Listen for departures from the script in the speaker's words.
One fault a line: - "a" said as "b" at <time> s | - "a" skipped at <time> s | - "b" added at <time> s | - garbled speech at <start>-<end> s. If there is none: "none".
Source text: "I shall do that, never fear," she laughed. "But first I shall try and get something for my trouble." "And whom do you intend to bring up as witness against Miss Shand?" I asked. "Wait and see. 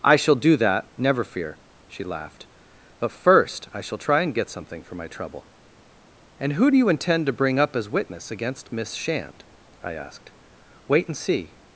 - "whom" said as "who" at 6.5 s